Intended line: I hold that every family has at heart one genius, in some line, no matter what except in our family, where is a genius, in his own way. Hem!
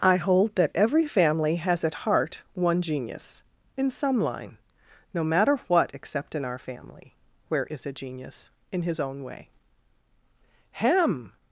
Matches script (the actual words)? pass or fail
pass